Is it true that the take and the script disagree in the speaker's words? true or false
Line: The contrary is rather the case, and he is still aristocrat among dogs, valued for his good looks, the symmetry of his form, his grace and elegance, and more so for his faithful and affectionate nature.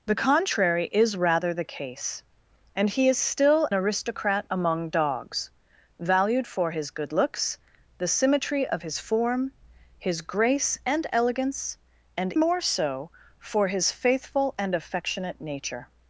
false